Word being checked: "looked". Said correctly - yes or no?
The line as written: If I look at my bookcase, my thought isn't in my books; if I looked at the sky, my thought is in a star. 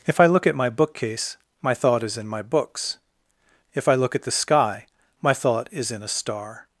no